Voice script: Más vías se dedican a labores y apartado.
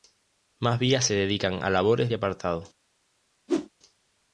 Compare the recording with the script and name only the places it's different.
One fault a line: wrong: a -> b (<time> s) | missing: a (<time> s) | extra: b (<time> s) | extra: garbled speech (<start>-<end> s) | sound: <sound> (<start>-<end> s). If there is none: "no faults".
sound: whoosh (3.5-3.7 s)